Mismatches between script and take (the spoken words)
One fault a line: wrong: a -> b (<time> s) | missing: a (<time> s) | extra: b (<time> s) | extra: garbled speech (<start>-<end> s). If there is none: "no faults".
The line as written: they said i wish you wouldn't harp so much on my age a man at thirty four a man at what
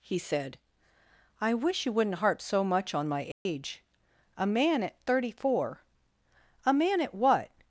wrong: they -> he (0.0 s)